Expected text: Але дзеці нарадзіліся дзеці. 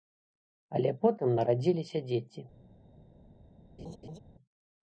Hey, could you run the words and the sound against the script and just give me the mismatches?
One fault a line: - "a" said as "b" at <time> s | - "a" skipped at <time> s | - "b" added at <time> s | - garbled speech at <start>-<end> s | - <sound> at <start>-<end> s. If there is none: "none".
- "дзеці" said as "потым" at 1.1 s
- laugh at 3.8-4.2 s